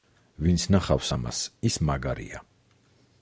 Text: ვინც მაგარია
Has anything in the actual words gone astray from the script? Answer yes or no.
yes